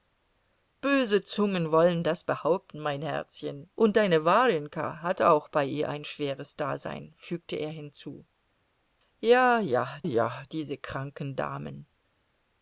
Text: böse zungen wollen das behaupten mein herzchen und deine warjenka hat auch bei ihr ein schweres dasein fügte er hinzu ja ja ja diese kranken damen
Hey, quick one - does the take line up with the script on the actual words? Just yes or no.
yes